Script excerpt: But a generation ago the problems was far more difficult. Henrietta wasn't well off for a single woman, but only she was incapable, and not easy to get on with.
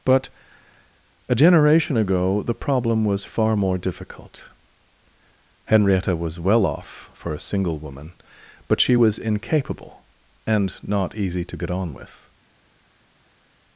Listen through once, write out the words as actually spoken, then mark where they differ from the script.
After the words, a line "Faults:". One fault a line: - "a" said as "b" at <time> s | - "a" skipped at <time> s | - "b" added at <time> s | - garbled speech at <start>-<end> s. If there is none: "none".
But a generation ago the problem was far more difficult. Henrietta was well off for a single woman, but she was incapable, and not easy to get on with.
Faults:
- "problems" said as "problem" at 2.5 s
- "wasn't" said as "was" at 6.2 s
- "only" skipped at 8.8 s